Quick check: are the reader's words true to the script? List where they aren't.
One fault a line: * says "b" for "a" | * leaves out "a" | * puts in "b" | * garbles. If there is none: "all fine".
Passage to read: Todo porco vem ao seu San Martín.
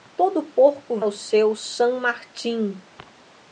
* leaves out "vem"